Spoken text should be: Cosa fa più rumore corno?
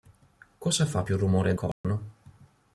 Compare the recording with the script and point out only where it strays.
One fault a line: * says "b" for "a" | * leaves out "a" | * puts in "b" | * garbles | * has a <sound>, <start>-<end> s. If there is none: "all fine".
* has a dropout, 1.7-1.8 s